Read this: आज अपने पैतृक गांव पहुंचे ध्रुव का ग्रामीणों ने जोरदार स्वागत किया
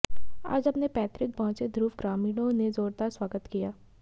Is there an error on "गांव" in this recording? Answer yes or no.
yes